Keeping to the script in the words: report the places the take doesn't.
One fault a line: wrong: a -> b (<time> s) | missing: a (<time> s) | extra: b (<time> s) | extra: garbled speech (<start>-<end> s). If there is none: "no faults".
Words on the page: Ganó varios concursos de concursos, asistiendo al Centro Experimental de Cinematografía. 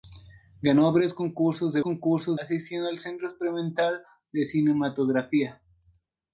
no faults